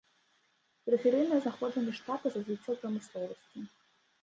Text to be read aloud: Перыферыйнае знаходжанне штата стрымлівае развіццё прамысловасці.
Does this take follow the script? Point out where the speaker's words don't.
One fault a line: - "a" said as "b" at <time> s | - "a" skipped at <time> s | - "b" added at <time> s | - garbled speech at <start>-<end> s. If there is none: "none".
- "стрымлівае" skipped at 2.3 s